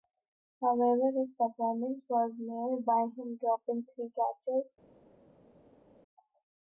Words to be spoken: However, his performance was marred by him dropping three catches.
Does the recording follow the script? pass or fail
pass